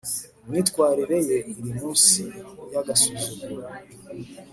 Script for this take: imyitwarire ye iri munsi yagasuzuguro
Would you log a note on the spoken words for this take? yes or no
no